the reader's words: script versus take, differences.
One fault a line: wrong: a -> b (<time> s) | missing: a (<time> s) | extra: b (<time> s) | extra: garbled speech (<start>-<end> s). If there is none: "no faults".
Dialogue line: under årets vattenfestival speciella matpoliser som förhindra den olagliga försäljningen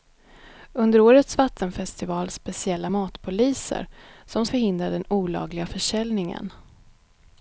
no faults